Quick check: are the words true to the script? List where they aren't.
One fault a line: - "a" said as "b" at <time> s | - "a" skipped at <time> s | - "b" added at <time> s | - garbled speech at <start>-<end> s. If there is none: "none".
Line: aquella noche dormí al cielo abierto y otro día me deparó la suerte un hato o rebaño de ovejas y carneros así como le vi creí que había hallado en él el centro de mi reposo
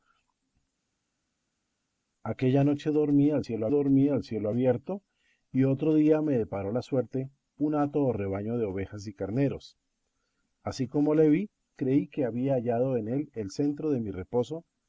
- "dormí al cielo" added at 3.7 s